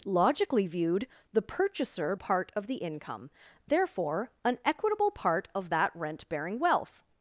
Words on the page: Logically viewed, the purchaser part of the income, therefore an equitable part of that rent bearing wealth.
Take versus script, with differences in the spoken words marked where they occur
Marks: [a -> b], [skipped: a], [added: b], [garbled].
Logically viewed, the purchaser part of the income, therefore an equitable part of that rent bearing wealth.